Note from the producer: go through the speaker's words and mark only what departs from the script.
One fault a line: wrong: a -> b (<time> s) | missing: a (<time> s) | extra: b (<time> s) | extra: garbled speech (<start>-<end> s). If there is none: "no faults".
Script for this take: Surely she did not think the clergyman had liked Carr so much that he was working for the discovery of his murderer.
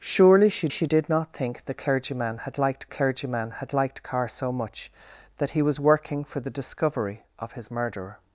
extra: she (0.7 s)
extra: clergyman had liked (2.9 s)